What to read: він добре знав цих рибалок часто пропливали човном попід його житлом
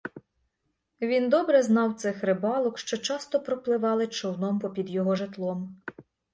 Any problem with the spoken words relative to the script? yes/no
yes